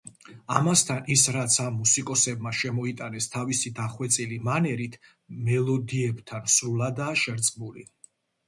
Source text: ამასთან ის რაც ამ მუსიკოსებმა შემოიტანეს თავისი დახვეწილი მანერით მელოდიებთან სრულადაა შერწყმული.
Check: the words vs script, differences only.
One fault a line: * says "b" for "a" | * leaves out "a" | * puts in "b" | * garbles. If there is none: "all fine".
all fine